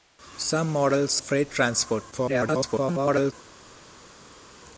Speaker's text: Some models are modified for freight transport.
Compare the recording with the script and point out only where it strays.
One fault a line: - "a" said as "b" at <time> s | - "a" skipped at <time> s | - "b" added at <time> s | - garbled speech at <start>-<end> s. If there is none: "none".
- "are modified for" skipped at 1.2 s
- garbled speech at 2.1-3.3 s